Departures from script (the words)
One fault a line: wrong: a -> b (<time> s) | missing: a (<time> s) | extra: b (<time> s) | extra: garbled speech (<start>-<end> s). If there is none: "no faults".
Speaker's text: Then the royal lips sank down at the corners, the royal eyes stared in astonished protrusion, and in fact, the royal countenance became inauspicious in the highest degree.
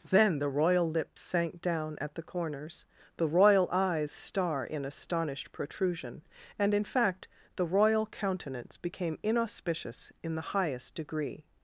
wrong: stared -> star (4.1 s)